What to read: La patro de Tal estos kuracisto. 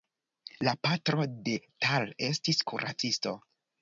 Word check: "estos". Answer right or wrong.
wrong